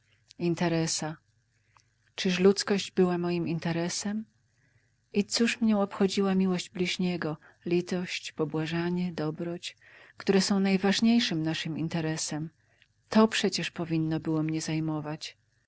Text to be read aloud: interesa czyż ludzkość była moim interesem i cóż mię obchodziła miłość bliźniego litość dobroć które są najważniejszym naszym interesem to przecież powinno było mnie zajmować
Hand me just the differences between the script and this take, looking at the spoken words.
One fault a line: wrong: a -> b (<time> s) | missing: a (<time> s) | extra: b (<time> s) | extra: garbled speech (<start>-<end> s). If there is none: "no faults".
extra: pobłażanie (8.3 s)